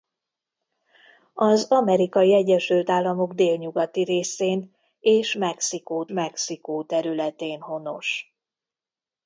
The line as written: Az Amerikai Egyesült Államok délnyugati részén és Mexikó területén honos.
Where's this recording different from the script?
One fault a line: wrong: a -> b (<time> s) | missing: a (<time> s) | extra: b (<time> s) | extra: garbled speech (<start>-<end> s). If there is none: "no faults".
extra: Mexikó (6.1 s)